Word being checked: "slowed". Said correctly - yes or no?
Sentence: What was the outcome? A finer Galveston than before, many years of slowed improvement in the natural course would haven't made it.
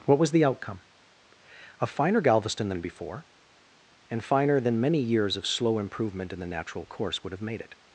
no